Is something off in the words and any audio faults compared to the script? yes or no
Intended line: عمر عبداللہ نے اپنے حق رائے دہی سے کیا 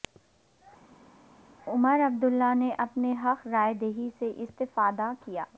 yes